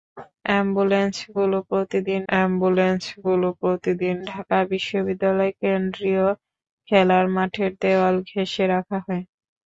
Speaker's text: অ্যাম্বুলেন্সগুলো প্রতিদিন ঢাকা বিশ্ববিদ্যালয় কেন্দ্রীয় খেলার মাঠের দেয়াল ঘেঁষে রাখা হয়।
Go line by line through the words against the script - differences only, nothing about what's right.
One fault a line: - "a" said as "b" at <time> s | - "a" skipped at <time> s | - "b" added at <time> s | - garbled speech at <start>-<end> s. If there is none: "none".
- "অ্যাম্বুলেন্সগুলো প্রতিদিন" added at 2.3 s